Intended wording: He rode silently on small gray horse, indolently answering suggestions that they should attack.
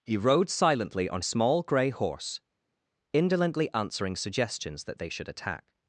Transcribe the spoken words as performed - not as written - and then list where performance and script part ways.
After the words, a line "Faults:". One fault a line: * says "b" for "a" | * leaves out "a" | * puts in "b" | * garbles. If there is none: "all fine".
He rode silently on small gray horse, indolently answering suggestions that they should attack.
Faults:
all fine